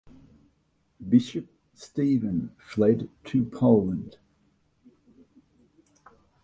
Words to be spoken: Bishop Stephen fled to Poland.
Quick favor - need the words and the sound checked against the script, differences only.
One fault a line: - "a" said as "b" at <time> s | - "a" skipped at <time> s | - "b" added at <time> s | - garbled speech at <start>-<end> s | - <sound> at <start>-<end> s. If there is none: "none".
none